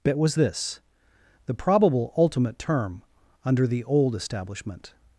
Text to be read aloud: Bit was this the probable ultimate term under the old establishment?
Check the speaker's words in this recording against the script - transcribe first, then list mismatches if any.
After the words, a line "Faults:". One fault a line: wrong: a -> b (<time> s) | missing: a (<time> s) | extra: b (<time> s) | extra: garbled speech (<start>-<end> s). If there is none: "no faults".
Bit was this the probable ultimate term under the old establishment?
Faults:
no faults